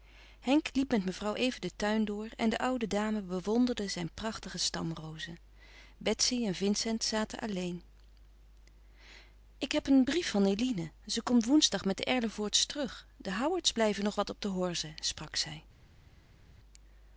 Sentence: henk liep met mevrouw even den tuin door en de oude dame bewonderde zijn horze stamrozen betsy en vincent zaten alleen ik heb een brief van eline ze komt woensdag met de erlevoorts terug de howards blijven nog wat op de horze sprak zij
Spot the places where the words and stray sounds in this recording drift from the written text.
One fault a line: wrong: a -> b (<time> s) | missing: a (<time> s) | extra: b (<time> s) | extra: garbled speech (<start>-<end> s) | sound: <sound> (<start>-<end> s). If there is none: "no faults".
wrong: horze -> prachtige (4.1 s)